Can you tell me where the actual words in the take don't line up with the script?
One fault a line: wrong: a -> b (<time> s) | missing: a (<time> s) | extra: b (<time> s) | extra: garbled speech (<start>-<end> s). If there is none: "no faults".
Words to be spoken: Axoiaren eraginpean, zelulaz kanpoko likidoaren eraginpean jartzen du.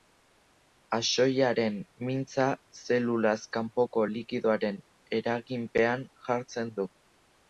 wrong: eraginpean -> mintza (2.1 s)